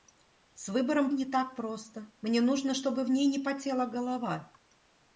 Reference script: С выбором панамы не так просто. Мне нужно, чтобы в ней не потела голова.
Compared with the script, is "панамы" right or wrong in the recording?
wrong